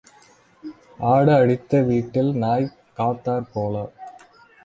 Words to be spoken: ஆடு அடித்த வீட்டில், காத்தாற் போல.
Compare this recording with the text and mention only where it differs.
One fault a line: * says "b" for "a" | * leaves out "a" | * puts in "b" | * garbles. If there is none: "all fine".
* puts in "நாய்"